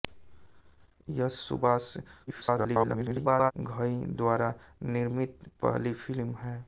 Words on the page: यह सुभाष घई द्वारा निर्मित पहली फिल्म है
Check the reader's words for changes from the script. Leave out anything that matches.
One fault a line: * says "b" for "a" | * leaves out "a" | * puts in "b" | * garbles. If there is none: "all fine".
* garbles